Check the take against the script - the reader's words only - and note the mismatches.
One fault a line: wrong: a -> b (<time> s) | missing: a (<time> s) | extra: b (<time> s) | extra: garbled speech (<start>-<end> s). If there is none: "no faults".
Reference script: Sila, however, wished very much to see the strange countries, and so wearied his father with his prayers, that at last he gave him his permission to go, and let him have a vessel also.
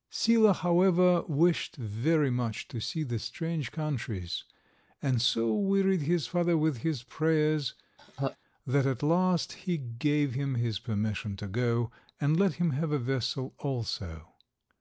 no faults